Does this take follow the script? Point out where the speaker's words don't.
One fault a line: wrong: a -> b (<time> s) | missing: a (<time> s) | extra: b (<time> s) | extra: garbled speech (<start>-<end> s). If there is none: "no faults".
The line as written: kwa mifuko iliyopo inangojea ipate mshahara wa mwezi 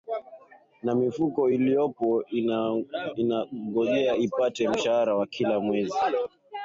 wrong: kwa -> na (0.8 s)
extra: kila (5.3 s)